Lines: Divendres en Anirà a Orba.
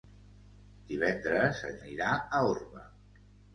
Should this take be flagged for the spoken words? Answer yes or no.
no